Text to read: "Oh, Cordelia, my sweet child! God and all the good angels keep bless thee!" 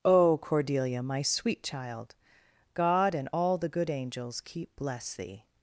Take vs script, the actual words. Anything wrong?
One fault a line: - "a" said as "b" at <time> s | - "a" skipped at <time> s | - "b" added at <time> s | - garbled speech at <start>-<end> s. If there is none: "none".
none